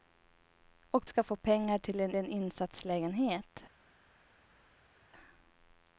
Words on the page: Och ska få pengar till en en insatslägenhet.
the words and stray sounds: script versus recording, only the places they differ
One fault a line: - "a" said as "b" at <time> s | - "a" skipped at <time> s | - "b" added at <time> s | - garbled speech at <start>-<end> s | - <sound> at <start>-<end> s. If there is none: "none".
none